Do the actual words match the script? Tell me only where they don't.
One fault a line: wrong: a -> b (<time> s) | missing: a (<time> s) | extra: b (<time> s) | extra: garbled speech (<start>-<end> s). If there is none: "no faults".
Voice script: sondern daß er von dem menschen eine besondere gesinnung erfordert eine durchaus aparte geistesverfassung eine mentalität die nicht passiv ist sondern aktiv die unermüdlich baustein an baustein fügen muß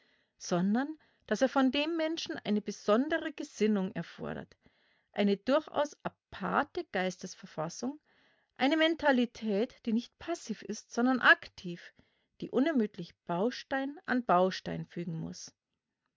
no faults